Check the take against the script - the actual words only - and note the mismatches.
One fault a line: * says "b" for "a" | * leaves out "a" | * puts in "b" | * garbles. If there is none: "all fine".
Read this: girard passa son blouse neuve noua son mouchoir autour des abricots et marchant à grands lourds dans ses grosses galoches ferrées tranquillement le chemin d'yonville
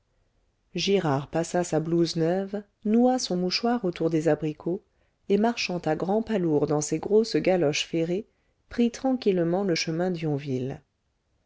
* says "sa" for "son"
* puts in "pas"
* puts in "prit"